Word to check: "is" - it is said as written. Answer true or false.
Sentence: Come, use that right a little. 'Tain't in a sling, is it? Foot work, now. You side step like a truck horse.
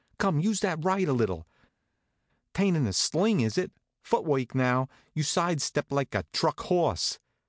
true